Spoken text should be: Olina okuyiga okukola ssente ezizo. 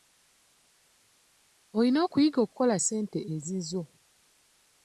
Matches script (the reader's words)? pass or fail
pass